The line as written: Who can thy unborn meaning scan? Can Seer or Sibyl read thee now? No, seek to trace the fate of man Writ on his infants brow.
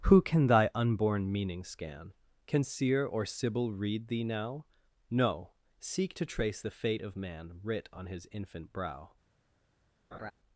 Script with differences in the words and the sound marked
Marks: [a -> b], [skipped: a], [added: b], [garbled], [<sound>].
Who can thy unborn meaning scan? Can Seer or Sibyl read thee now? No, seek to trace the fate of man Writ on his [infants -> infant] brow. [laugh]